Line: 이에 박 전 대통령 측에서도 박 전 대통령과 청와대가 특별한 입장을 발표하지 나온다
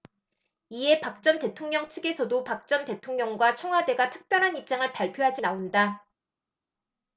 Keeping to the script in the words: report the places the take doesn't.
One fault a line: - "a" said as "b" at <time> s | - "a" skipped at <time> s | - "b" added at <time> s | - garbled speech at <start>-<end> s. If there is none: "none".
none